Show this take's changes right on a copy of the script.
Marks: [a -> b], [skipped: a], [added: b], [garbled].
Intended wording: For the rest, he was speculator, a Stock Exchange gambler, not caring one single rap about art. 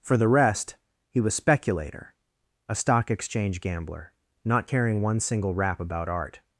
For the rest, he was speculator, a Stock Exchange gambler, not caring one single rap about art.